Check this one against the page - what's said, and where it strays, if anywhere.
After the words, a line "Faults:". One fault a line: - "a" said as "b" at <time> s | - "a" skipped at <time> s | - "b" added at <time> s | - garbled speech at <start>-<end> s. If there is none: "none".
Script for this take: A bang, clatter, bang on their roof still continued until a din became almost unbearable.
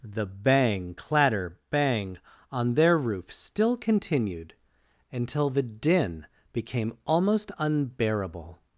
The bang, clatter, bang on their roof still continued until the din became almost unbearable.
Faults:
- "A" said as "The" at 0.0 s
- "a" said as "the" at 5.5 s